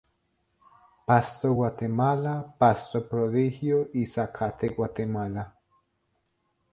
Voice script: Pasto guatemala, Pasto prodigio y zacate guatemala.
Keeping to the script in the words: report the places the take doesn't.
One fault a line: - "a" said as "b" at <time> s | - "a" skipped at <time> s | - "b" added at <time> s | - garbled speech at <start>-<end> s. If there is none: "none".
none